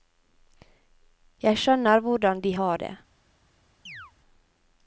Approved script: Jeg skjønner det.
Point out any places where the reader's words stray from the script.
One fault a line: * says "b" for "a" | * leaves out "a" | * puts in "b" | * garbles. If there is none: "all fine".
* puts in "hvordan de har"